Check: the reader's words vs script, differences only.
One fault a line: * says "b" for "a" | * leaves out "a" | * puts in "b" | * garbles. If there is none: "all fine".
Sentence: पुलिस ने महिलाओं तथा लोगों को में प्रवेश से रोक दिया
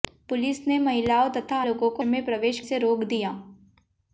all fine